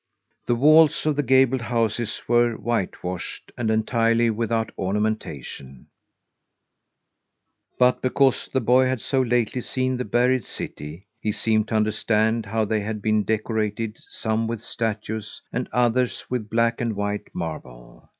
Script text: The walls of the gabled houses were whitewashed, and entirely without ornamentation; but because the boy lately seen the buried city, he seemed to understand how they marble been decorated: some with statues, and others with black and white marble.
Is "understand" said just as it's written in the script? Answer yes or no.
yes